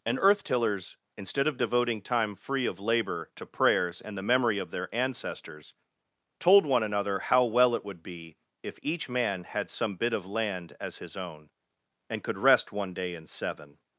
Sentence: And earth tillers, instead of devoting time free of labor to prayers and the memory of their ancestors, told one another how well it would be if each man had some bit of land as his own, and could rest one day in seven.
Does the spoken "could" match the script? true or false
true